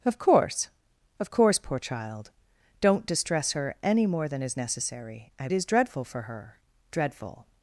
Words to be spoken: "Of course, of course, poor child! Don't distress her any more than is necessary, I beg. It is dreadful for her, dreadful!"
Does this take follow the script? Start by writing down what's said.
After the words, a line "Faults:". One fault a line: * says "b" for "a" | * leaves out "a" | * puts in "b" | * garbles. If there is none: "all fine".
"Of course, of course, poor child! Don't distress her any more than is necessary, I is dreadful for her, dreadful!"
Faults:
* leaves out "beg It"